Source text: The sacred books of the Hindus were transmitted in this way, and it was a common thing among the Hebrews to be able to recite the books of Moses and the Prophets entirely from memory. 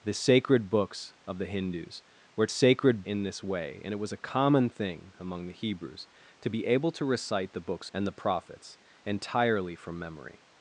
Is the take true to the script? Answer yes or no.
no